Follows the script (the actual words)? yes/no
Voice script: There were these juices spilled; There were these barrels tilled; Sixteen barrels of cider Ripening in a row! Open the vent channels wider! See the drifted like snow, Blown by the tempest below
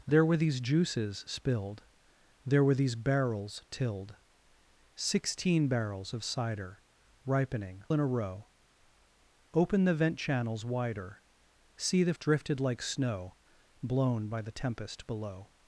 yes